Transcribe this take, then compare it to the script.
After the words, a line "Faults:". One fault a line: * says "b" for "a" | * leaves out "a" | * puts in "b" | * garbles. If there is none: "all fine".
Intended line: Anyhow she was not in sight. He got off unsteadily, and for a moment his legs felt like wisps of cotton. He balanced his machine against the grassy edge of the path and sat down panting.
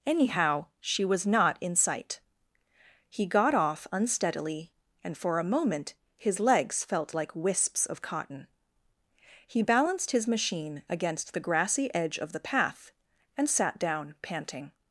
Anyhow she was not in sight. He got off unsteadily, and for a moment his legs felt like wisps of cotton. He balanced his machine against the grassy edge of the path and sat down panting.
Faults:
all fine